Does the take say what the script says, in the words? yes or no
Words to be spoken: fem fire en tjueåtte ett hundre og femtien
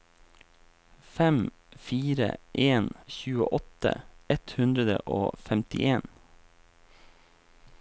yes